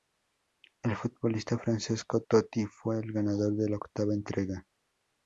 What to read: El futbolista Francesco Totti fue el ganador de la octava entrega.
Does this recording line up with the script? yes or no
yes